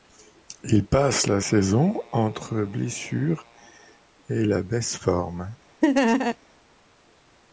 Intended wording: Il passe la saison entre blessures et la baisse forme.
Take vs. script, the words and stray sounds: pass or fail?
fail